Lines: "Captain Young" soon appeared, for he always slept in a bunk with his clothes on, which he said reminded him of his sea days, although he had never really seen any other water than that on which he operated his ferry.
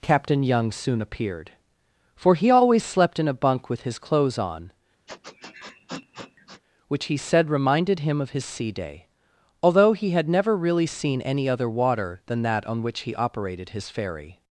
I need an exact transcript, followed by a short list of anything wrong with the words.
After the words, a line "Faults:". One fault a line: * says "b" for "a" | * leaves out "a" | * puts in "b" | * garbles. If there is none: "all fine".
"Captain Young" soon appeared, for he always slept in a bunk with his clothes on, which he said reminded him of his sea day, although he had never really seen any other water than that on which he operated his ferry.
Faults:
* says "day" for "days"